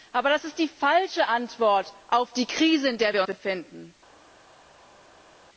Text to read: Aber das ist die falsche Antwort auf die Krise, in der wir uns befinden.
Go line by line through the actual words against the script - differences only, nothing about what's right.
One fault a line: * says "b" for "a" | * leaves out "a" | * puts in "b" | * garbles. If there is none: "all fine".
* leaves out "uns"